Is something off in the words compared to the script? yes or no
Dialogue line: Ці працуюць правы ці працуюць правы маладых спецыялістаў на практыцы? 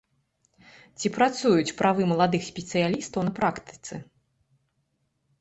yes